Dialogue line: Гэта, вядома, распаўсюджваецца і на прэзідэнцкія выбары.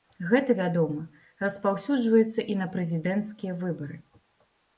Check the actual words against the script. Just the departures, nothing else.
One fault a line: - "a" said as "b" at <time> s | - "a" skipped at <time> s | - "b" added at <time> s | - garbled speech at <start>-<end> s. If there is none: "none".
none